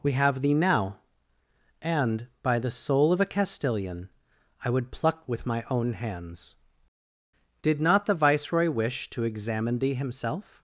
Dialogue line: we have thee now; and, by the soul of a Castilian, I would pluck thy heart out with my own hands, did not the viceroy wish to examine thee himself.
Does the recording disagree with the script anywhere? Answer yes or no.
yes